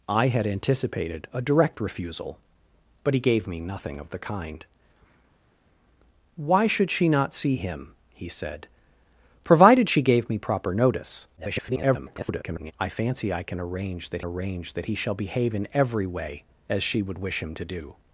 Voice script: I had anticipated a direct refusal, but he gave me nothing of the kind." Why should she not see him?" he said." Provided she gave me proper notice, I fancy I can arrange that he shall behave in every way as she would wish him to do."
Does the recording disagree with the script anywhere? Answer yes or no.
yes